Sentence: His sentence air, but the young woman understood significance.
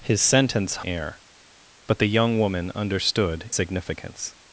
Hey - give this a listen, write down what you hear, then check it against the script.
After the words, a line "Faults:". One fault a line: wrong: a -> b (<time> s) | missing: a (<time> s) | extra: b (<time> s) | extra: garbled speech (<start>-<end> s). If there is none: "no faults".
His sentence air, but the young woman understood significance.
Faults:
no faults